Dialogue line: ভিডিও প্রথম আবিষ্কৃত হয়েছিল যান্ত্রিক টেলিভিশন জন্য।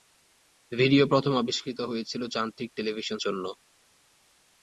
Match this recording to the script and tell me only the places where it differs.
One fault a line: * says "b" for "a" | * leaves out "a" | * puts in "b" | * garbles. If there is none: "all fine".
all fine